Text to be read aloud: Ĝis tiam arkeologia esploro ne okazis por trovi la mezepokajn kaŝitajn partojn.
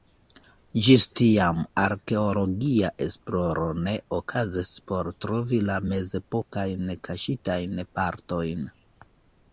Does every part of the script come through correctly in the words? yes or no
yes